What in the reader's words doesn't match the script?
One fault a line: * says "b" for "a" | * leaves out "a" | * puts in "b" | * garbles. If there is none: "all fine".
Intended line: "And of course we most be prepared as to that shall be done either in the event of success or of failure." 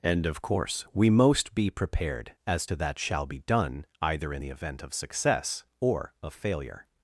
all fine